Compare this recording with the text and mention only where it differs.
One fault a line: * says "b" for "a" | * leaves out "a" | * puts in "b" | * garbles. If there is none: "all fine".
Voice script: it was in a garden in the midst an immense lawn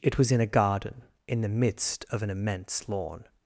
* puts in "of"